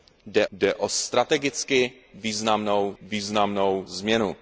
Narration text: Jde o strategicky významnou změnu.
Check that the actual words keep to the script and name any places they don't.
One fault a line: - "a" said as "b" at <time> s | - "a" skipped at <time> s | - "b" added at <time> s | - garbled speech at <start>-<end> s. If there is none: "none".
- "jde" added at 0.5 s
- "významnou" added at 3.0 s